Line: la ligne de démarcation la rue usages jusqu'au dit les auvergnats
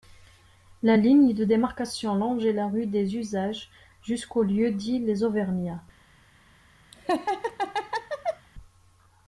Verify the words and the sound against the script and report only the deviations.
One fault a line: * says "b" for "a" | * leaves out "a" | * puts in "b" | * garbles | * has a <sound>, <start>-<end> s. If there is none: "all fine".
* puts in "longeait"
* puts in "des"
* puts in "lieu"
* has a laugh, 6.9-8.5 s